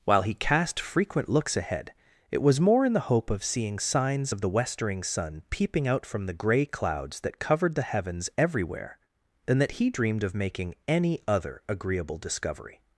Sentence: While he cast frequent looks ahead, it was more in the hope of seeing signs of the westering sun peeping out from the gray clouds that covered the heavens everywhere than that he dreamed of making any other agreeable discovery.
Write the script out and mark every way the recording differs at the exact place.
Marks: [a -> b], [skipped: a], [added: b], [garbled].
While he cast frequent looks ahead, it was more in the hope of seeing signs of the westering sun peeping out from the gray clouds that covered the heavens everywhere than that he dreamed of making any other agreeable discovery.